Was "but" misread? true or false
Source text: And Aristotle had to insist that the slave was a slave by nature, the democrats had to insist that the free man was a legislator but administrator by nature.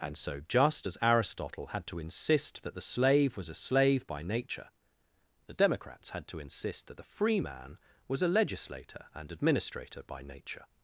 true